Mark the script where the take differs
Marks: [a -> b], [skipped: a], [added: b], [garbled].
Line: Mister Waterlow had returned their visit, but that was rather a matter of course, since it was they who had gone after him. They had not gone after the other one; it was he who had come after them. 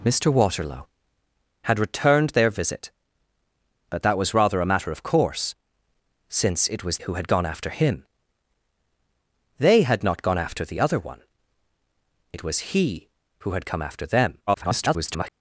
Mister Waterlow had returned their visit, but that was rather a matter of course, since it was [skipped: they] who had gone after him. They had not gone after the other one; it was he who had come after them. [garbled]